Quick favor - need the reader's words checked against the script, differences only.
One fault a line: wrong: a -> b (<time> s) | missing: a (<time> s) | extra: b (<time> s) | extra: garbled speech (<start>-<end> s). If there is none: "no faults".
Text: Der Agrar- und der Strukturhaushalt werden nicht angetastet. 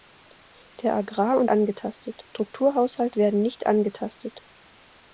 wrong: der -> angetastet (1.5 s)